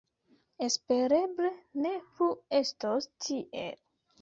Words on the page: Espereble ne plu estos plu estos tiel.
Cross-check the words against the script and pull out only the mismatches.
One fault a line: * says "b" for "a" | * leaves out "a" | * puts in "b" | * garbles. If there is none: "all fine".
* leaves out "plu estos"